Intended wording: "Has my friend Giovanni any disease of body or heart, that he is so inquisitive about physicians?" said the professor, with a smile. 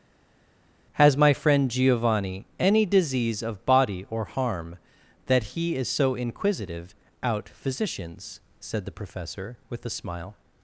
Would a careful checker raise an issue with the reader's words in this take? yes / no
yes